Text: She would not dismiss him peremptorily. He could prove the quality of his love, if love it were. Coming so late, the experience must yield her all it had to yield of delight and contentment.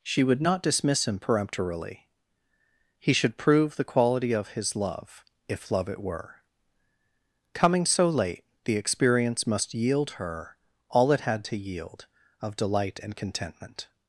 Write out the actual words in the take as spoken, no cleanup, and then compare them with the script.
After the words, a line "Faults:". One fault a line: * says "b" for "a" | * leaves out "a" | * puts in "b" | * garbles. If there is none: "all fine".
She would not dismiss him peremptorily. He should prove the quality of his love, if love it were. Coming so late, the experience must yield her all it had to yield of delight and contentment.
Faults:
* says "should" for "could"